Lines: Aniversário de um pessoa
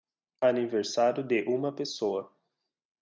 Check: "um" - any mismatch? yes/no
yes